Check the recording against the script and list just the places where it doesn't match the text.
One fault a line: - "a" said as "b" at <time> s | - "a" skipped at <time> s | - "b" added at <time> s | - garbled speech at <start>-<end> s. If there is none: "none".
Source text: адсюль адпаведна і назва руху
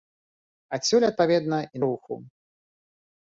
- "назва" skipped at 1.8 s